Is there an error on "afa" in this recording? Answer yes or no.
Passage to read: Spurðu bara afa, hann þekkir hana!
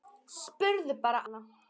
yes